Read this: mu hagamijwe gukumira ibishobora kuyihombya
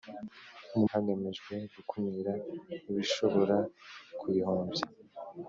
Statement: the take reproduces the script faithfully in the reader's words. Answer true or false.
true